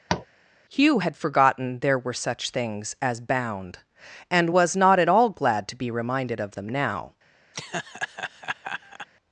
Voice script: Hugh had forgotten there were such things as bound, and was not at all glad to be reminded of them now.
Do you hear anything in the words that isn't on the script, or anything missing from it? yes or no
no